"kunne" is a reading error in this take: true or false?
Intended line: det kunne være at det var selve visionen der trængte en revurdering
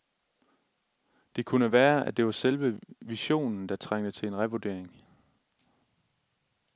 false